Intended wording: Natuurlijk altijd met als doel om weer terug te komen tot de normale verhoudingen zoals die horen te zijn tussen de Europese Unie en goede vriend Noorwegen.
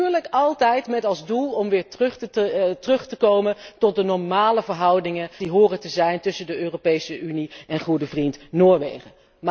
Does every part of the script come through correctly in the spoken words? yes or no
no